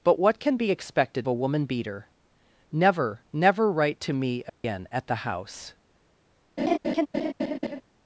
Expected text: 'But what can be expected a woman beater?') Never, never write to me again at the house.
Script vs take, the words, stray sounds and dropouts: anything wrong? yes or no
yes